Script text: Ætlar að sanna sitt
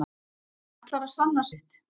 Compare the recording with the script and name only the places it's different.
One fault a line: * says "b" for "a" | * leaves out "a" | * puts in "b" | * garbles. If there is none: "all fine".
all fine